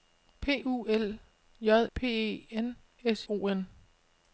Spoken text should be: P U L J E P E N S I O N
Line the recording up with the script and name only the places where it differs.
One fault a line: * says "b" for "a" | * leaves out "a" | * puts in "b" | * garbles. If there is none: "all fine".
* leaves out "E"
* leaves out "I"